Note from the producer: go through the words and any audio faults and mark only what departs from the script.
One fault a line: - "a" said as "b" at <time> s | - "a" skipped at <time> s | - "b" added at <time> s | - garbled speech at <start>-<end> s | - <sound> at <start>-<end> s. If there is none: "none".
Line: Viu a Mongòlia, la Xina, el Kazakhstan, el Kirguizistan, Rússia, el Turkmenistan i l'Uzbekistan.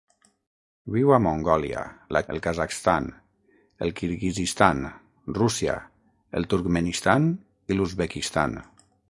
- "Xina" skipped at 2.2 s